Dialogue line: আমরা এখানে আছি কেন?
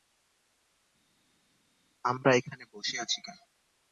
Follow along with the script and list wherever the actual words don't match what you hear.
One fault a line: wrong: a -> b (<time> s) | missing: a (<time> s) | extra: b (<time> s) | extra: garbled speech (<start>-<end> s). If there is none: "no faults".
extra: বসে (2.7 s)